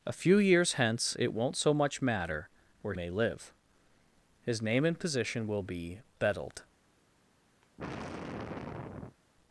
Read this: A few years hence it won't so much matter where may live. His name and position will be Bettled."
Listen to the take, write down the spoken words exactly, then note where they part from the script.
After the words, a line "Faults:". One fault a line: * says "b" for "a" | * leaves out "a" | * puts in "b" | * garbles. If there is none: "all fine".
A few years hence it won't so much matter where may live. His name and position will be Bettled."
Faults:
all fine